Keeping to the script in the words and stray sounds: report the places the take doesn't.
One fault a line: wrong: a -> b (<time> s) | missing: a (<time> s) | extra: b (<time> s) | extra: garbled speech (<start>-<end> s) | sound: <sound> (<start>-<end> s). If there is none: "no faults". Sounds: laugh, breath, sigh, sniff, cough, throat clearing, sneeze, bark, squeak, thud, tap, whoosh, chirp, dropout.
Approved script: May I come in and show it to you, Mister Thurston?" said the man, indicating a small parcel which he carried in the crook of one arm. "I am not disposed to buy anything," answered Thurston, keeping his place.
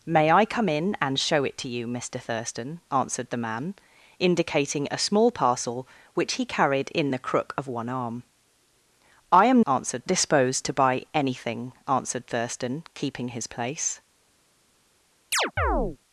wrong: said -> answered (2.9 s)
wrong: not -> answered (9.6 s)
sound: chirp (15.3-16.0 s)